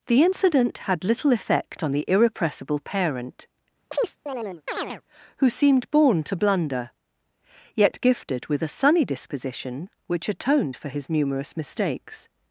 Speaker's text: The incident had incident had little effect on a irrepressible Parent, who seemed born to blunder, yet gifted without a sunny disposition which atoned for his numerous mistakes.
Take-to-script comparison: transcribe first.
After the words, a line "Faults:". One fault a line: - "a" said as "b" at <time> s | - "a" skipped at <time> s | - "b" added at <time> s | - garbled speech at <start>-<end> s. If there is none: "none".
The incident had little effect on the irrepressible Parent, who seemed born to blunder, yet gifted with a sunny disposition which atoned for his numerous mistakes.
Faults:
- "incident had" skipped at 1.0 s
- "a" said as "the" at 1.9 s
- "without" said as "with" at 8.5 s